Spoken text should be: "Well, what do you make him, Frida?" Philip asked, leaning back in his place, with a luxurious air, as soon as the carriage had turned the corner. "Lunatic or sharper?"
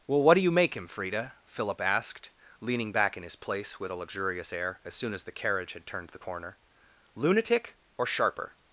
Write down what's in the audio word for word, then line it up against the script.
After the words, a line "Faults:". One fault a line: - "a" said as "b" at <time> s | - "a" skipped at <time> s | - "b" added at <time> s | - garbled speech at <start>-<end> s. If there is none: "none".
"Well, what do you make him, Frida?" Philip asked, leaning back in his place, with a luxurious air, as soon as the carriage had turned the corner. "Lunatic or sharper?"
Faults:
none